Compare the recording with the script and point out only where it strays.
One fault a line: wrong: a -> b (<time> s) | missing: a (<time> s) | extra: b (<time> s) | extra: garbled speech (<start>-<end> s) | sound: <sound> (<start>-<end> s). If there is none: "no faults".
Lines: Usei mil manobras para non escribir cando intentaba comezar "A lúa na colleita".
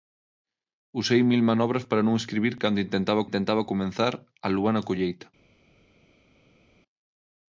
extra: intentaba (3.3 s)